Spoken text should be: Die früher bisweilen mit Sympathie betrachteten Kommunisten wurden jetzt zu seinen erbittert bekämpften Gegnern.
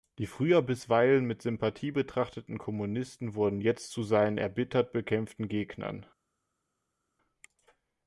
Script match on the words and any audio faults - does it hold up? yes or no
yes